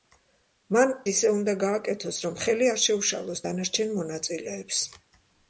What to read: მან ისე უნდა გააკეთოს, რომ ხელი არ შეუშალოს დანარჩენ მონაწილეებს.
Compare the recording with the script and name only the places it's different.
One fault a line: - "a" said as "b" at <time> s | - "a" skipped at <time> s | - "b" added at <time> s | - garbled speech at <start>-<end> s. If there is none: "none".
none